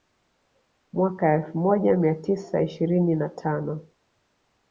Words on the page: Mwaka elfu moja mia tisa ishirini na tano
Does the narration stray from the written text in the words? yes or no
no